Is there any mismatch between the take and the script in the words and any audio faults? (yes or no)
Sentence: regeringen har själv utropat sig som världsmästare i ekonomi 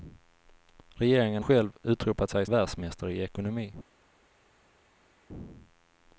yes